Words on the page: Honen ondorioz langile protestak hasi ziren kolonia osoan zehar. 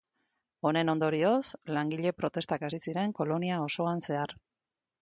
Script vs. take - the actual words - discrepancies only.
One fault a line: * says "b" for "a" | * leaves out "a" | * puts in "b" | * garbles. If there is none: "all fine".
all fine